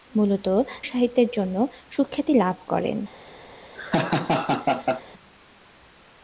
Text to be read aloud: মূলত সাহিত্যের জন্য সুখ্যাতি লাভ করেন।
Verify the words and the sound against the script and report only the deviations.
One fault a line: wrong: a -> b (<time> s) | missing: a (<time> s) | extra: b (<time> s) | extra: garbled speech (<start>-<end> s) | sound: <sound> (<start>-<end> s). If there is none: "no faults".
sound: laugh (3.7-5.0 s)